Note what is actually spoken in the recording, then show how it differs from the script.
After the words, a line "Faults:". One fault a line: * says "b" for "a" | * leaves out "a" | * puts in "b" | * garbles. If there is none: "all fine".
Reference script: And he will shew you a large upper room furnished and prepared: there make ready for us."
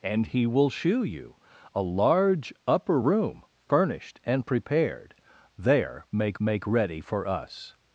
And he will shew you a large upper room furnished and prepared: there make make ready for us."
Faults:
* puts in "make"